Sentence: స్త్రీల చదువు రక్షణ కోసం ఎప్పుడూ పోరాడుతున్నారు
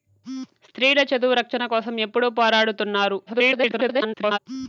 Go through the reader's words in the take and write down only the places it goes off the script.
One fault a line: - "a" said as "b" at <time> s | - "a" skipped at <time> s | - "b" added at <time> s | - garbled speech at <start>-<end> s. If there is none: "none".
- garbled speech at 3.3-4.4 s